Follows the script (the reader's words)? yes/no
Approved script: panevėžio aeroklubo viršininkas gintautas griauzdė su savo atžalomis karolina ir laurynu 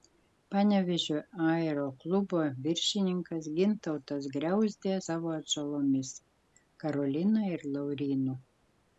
no